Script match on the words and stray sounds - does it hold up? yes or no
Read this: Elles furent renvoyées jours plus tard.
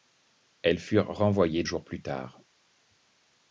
yes